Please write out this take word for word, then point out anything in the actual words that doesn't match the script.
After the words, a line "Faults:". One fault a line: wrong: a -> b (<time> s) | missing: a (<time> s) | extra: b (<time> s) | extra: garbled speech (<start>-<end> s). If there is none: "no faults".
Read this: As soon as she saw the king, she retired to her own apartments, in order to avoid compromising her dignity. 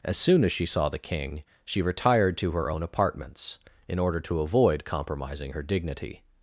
As soon as she saw the king, she retired to her own apartments, in order to avoid compromising her dignity.
Faults:
no faults